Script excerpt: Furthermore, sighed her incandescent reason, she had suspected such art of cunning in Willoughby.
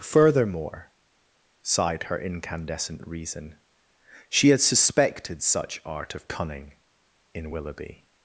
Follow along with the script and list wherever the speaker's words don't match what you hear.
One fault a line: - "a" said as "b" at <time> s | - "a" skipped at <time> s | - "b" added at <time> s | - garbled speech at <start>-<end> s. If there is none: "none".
none